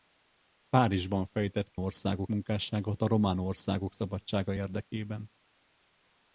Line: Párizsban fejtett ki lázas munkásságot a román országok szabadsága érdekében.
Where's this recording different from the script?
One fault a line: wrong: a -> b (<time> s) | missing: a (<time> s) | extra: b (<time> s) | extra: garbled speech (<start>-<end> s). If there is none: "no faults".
wrong: lázas -> országok (1.8 s)